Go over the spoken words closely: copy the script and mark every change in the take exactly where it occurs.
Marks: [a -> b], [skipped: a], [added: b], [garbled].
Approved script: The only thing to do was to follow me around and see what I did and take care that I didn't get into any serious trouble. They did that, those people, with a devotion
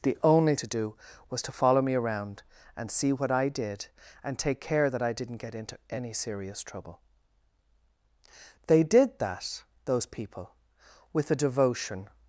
The only [skipped: thing] to do was to follow me around and see what I did and take care that I didn't get into any serious trouble. They did that, those people, with a devotion